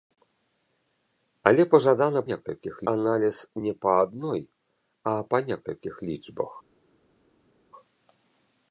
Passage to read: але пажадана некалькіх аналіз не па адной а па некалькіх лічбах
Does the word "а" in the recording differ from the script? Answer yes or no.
no